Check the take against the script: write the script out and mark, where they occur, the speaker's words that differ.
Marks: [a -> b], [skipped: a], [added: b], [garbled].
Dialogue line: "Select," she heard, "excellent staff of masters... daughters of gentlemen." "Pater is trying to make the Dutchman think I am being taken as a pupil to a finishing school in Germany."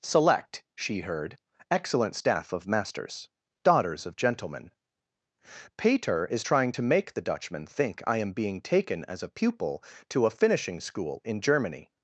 "Select," she heard, "excellent staff of masters... daughters of gentlemen." "Pater is trying to make the Dutchman think I am being taken as a pupil to a finishing school in Germany."